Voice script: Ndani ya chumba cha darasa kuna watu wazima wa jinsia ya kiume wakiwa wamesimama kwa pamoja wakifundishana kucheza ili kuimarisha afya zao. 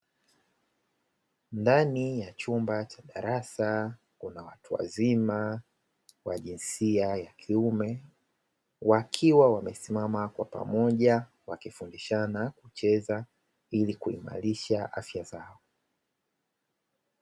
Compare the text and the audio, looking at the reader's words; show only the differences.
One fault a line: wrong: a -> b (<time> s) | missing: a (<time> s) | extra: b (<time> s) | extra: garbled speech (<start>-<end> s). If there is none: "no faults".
no faults